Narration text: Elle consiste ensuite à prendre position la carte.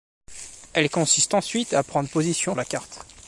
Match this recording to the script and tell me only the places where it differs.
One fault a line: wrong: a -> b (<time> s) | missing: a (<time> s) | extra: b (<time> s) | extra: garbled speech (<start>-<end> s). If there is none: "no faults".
no faults